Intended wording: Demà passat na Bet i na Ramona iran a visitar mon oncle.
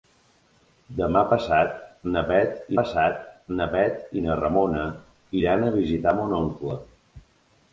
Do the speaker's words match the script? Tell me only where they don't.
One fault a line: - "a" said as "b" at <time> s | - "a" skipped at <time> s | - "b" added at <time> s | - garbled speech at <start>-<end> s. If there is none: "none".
- "passat na Bet" added at 2.8 s